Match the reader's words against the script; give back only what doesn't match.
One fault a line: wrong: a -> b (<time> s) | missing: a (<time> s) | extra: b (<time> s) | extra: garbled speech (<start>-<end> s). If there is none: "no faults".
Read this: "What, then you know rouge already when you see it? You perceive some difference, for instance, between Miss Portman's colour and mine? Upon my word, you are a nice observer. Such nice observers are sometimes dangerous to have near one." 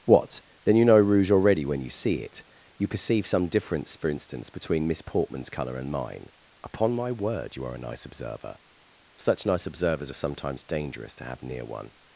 no faults